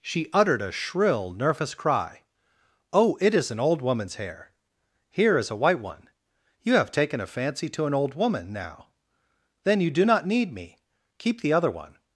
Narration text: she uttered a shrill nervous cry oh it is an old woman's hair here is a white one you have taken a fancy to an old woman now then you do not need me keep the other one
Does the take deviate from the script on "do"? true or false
false